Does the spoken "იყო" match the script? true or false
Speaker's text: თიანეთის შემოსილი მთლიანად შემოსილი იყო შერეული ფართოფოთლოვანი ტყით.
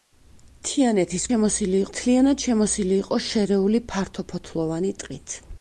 true